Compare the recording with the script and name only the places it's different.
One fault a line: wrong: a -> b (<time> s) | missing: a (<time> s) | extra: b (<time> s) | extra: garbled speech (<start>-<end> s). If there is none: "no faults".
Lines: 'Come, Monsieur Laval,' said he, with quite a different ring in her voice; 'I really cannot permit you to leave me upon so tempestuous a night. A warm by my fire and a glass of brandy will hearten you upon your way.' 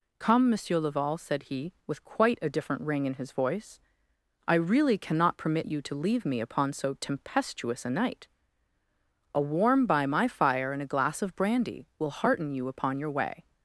wrong: her -> his (3.1 s)